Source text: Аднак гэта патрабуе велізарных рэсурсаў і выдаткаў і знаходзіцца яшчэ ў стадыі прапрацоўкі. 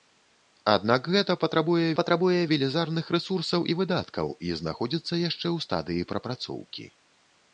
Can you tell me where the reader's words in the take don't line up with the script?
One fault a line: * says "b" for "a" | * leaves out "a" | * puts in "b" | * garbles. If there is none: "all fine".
* puts in "патрабуе"